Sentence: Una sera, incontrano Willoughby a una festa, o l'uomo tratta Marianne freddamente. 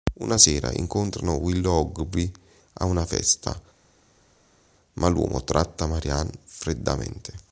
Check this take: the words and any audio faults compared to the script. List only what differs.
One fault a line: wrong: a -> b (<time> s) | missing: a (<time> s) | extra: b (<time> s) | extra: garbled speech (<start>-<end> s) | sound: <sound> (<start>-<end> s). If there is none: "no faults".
wrong: o -> ma (4.9 s)